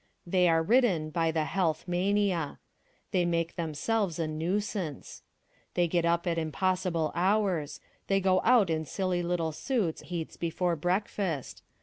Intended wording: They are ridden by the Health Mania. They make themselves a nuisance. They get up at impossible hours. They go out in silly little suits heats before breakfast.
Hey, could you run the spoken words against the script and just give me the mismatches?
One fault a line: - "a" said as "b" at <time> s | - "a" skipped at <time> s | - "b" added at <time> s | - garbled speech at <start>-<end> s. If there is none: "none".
none